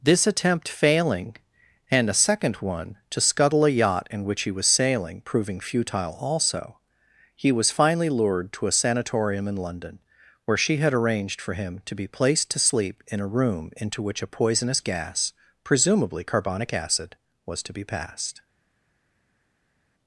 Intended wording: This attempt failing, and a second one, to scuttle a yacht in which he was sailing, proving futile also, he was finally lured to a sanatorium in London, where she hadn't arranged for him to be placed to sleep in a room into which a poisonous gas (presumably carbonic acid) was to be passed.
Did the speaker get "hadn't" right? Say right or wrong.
wrong